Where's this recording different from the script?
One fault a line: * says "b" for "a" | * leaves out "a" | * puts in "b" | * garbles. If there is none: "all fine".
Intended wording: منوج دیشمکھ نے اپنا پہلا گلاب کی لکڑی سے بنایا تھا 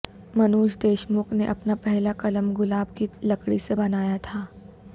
* puts in "قلم"